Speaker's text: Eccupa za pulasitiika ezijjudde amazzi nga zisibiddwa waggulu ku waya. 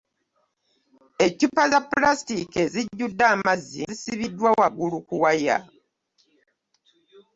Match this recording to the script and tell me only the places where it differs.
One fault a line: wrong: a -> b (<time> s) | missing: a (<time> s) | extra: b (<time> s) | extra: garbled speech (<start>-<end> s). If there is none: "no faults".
missing: nga (3.8 s)